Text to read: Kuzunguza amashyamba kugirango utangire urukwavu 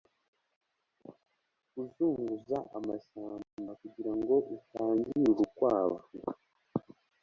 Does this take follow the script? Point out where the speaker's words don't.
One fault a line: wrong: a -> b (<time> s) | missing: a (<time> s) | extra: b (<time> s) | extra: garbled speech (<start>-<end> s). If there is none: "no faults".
no faults